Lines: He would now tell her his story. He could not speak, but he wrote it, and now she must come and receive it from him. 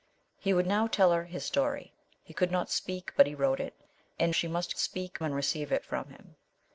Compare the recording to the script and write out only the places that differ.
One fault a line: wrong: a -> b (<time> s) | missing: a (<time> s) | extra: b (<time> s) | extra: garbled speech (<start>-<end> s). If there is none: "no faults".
missing: now (4.3 s)
wrong: come -> speak (4.8 s)